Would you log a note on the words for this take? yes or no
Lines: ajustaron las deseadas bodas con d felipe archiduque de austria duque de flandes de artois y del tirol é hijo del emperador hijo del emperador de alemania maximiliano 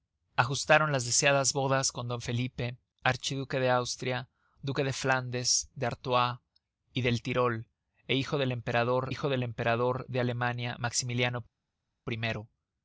no